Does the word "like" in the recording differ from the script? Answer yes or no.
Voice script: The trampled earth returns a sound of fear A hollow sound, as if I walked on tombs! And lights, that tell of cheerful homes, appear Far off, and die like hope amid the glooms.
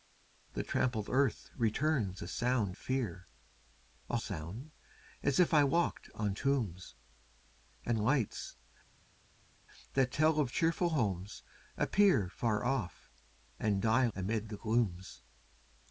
yes